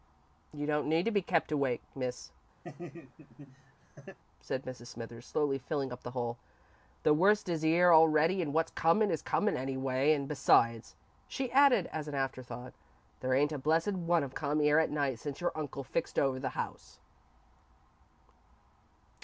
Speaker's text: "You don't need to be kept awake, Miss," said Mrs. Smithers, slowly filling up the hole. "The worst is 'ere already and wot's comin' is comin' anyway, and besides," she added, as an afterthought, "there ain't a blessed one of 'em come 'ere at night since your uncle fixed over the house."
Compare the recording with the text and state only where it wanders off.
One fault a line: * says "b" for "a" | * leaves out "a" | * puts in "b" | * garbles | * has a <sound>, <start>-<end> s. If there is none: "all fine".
* has a laugh, 2.6-4.2 s
* leaves out "em"